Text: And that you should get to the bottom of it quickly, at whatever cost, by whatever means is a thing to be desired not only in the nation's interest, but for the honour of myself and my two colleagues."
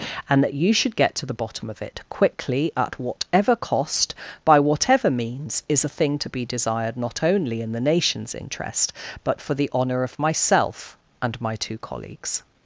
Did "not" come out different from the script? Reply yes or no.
no